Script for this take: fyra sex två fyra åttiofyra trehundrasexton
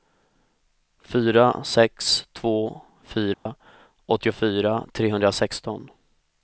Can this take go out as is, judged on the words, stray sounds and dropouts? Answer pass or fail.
fail